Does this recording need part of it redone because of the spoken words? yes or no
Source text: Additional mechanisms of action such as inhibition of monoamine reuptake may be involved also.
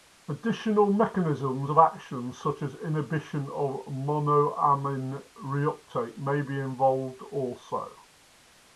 no